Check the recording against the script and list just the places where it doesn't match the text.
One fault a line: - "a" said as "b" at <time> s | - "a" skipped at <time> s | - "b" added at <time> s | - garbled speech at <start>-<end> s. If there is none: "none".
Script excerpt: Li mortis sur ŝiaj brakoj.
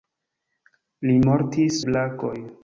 - "sur ŝiaj" skipped at 1.8 s